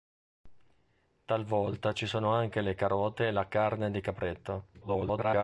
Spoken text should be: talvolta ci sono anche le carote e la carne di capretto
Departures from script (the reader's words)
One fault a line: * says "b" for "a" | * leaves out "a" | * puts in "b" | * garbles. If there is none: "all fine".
* garbles